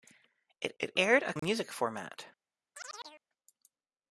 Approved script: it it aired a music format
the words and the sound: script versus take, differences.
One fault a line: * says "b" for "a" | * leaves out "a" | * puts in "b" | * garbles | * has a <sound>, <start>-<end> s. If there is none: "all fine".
* has a dropout, 1.4-1.4 s
* has a chirp, 2.7-3.2 s